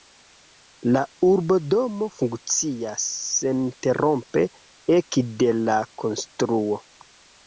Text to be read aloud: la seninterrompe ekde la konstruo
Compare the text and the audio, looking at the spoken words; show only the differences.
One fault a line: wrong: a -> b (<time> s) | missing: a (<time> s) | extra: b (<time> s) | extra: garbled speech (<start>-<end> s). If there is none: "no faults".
extra: urbodomo funkcias (1.3 s)